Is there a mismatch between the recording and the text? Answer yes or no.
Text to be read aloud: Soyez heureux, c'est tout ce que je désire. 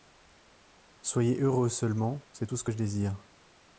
yes